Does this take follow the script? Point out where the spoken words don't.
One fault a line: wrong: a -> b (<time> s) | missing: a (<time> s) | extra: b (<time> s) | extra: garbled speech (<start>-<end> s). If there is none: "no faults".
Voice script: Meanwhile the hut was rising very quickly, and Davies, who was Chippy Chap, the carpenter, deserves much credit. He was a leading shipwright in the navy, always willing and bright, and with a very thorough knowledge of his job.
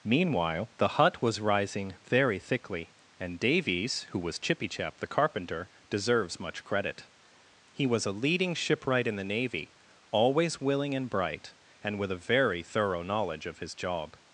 wrong: quickly -> thickly (2.4 s)